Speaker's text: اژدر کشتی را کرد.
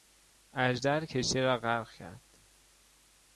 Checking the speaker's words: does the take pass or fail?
fail